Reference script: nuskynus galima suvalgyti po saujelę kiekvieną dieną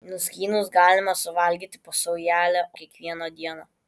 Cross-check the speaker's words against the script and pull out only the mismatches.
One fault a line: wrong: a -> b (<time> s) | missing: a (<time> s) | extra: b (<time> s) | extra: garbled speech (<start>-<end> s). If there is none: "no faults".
no faults